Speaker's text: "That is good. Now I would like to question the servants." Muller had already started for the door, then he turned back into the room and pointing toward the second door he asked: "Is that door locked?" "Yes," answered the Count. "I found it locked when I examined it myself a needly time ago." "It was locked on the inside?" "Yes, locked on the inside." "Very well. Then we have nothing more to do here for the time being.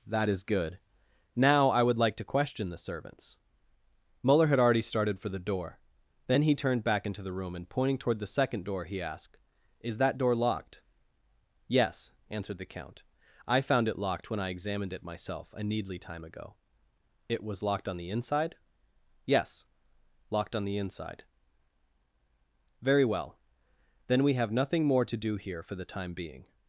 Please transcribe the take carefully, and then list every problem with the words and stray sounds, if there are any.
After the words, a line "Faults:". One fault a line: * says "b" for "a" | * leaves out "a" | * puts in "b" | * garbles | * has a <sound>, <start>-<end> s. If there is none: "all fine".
"That is good. Now I would like to question the servants." Muller had already started for the door, then he turned back into the room and pointing toward the second door he asked: "Is that door locked?" "Yes," answered the Count. "I found it locked when I examined it myself a needly time ago." "It was locked on the inside?" "Yes, locked on the inside." "Very well. Then we have nothing more to do here for the time being.
Faults:
all fine